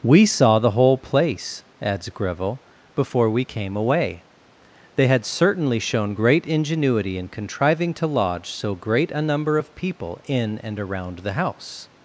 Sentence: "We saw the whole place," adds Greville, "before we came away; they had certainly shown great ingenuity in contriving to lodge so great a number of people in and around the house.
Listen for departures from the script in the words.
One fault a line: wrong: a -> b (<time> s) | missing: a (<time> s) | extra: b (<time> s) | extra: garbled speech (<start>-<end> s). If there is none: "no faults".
no faults